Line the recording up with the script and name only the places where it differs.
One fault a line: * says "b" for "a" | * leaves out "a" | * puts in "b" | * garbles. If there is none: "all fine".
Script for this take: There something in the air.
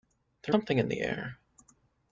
all fine